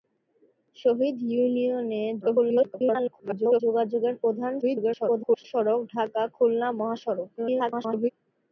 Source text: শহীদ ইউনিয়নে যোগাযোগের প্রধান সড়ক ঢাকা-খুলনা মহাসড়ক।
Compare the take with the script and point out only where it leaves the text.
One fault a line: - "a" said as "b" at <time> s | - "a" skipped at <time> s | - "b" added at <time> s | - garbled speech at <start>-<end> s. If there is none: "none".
- garbled speech at 2.2-3.6 s
- garbled speech at 4.6-5.4 s
- garbled speech at 7.4-8.1 s